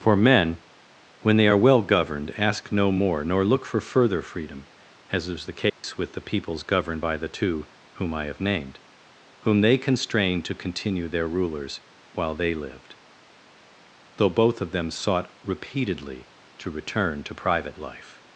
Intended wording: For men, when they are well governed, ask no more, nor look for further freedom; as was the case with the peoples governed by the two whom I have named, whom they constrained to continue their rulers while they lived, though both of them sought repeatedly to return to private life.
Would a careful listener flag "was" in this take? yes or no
yes